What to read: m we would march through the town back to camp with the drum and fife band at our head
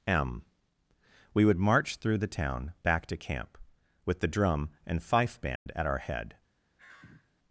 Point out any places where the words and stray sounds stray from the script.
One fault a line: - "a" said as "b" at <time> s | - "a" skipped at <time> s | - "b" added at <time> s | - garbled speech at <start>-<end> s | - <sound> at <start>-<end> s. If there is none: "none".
- dropout at 5.6-5.7 s
- sigh at 6.8-7.3 s